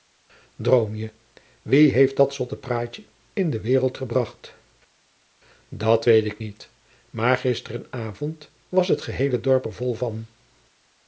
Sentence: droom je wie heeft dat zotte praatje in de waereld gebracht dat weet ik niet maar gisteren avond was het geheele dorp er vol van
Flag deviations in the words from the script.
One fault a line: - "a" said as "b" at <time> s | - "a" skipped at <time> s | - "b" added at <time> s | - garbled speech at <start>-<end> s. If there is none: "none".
none